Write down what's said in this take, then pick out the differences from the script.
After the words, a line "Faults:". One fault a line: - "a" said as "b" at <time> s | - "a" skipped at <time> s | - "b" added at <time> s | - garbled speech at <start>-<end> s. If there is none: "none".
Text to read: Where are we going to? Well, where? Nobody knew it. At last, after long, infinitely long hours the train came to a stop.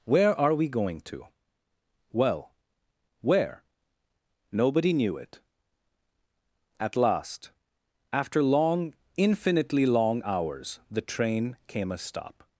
Where are we going to? Well, where? Nobody knew it. At last, after long, infinitely long hours the train came a stop.
Faults:
- "to" skipped at 11.9 s